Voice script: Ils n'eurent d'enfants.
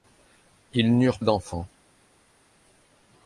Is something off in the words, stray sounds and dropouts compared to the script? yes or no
no